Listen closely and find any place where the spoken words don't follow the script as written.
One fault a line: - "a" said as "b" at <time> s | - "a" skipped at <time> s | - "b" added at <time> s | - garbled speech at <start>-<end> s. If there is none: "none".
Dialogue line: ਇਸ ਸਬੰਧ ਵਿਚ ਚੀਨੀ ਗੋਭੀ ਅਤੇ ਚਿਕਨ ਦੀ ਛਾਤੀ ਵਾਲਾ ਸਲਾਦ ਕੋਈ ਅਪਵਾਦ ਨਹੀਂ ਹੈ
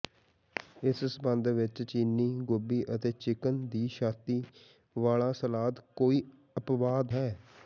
- "ਨਹੀਂ" skipped at 7.1 s